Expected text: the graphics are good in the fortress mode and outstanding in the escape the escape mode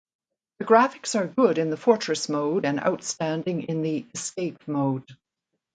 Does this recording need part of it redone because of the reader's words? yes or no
yes